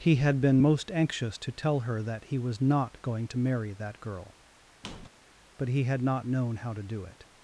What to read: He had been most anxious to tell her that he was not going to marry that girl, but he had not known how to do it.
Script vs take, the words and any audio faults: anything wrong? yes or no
yes